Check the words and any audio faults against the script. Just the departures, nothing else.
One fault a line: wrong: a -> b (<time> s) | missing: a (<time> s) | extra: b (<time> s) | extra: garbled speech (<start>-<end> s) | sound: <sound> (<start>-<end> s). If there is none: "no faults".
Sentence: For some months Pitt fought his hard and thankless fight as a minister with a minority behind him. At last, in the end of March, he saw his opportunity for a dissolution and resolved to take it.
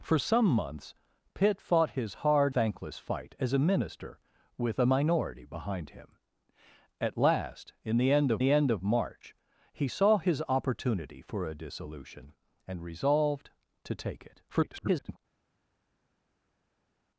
missing: and (2.5 s)
extra: the end of (8.4 s)
extra: garbled speech (14.5-15.2 s)